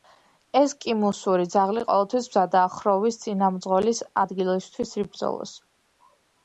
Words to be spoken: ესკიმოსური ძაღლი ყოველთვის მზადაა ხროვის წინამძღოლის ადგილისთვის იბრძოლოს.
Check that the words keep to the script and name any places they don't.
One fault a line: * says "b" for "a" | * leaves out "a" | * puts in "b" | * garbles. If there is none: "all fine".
all fine